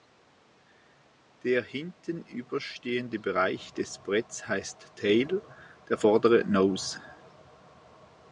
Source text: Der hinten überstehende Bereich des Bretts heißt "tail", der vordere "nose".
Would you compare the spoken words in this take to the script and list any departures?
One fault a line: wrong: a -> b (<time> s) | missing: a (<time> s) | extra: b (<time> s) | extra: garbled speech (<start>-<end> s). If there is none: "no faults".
no faults